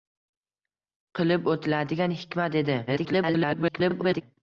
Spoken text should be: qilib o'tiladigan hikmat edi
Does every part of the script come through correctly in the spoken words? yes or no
no